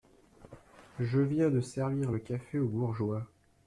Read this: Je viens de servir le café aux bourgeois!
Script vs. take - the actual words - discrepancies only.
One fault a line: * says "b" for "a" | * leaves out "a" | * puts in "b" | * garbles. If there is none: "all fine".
all fine